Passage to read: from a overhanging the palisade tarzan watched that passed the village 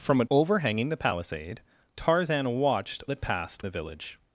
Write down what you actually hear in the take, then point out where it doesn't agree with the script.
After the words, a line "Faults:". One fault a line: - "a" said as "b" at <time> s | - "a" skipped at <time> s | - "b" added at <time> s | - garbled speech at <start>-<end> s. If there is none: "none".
from a overhanging the palisade tarzan watched that passed the village
Faults:
none